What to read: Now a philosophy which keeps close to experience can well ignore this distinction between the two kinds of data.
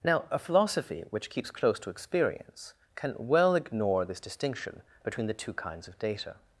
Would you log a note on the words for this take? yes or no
no